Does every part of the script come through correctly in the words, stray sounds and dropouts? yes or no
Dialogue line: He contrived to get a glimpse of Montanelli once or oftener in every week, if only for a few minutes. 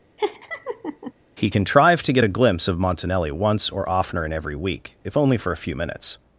no